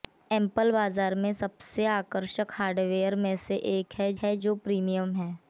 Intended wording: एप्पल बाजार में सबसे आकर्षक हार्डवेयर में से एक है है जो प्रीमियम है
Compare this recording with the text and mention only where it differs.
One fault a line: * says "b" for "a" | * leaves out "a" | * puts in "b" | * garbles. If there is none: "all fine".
all fine